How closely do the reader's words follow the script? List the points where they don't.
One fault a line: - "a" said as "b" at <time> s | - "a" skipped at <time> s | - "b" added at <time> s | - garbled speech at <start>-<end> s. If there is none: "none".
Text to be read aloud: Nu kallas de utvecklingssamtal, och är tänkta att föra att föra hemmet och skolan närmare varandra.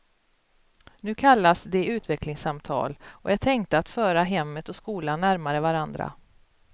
- "att föra" skipped at 4.2 s